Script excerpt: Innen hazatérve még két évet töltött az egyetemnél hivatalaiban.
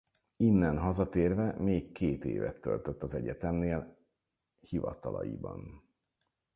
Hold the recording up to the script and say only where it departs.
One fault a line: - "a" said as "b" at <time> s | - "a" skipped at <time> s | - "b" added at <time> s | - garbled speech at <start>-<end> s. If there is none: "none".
none